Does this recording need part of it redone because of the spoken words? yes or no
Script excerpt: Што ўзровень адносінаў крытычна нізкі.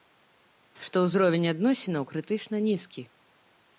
no